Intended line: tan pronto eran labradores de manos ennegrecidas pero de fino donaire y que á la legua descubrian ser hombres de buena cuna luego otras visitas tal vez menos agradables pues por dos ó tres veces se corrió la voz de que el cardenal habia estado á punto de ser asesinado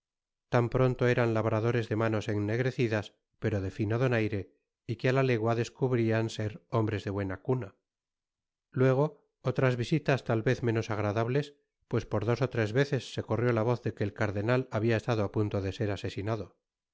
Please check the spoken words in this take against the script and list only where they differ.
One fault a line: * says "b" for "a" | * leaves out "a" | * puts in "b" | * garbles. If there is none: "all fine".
all fine